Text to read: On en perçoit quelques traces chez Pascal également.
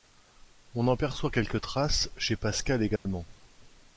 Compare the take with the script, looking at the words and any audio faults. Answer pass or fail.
fail